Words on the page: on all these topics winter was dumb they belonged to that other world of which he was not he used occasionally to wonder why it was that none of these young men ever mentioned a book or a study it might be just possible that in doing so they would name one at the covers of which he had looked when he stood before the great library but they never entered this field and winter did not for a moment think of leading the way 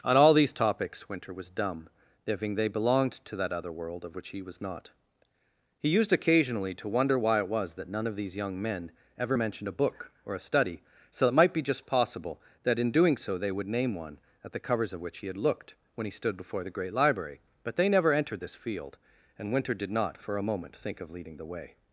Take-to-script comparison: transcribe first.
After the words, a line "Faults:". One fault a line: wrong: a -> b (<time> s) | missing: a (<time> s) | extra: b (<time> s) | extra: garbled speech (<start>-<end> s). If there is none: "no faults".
on all these topics winter was dumb thinking they belonged to that other world of which he was not he used occasionally to wonder why it was that none of these young men ever mentioned a book or a study so it might be just possible that in doing so they would name one at the covers of which he had looked when he stood before the great library but they never entered this field and winter did not for a moment think of leading the way
Faults:
extra: thinking (2.2 s)
extra: so (11.1 s)